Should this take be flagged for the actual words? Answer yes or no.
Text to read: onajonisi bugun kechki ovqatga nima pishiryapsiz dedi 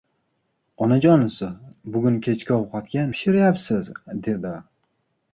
yes